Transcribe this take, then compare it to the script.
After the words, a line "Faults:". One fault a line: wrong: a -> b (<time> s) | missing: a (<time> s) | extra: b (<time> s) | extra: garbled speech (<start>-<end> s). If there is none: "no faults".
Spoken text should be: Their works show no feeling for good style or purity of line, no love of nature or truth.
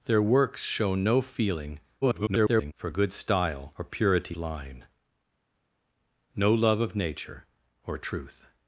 Their works show no feeling [garbled] for good style or purity line, no love of nature or truth.
Faults:
extra: garbled speech (2.0-2.7 s)
missing: of (4.4 s)